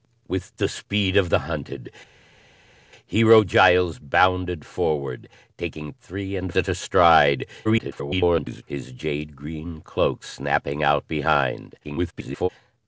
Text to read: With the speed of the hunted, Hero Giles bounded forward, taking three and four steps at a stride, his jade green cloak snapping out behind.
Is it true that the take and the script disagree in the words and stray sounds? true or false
true